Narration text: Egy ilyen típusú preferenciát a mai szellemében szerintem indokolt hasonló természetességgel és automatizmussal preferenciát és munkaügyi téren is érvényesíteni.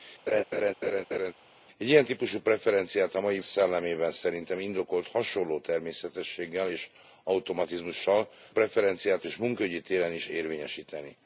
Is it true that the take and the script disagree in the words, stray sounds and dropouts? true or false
true